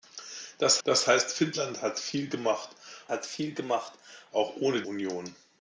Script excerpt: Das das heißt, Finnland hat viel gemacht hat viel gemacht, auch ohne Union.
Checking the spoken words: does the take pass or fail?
pass